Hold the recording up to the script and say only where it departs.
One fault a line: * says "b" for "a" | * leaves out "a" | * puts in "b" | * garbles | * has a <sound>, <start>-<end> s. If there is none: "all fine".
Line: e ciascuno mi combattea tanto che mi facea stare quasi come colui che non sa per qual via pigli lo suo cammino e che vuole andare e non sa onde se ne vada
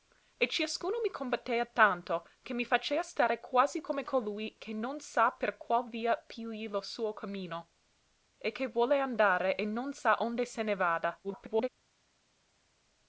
* garbles